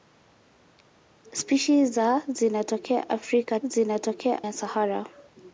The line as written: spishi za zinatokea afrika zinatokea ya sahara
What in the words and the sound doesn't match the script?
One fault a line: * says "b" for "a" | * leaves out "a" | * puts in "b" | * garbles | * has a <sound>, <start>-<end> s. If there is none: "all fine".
all fine